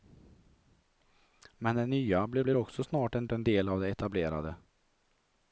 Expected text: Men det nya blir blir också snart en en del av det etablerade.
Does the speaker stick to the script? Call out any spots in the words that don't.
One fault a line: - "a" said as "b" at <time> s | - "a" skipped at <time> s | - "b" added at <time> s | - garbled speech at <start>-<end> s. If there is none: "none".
none